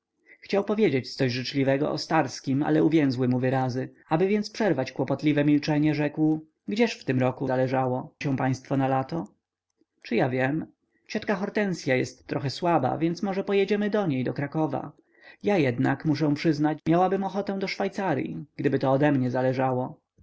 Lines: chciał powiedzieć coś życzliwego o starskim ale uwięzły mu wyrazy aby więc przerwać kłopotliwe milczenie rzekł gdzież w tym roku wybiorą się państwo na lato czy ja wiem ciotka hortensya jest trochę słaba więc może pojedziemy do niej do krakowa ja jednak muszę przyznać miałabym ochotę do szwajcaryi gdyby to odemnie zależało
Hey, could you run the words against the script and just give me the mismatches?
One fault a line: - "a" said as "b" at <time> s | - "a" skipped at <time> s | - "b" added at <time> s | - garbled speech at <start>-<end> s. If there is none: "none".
- "wybiorą" said as "zależało" at 7.5 s